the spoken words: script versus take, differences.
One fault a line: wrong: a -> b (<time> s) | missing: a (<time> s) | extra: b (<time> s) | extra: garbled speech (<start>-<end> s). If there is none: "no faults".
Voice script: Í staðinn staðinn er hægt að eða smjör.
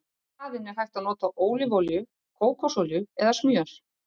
missing: staðinn (0.7 s)
extra: nota ólífuolíu kókosolíu (1.1 s)